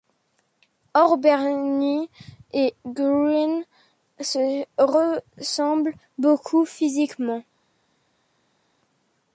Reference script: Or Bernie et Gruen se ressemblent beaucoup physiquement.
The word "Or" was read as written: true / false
true